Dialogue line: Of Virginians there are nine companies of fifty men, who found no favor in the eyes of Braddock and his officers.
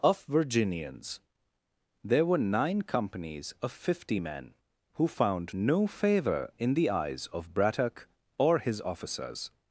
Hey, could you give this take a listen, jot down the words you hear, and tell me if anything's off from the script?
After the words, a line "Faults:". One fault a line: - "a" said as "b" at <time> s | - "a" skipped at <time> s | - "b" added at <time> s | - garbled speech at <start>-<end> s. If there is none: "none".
Of Virginians there were nine companies of fifty men, who found no favor in the eyes of Braddock or his officers.
Faults:
- "are" said as "were" at 2.2 s
- "and" said as "or" at 8.4 s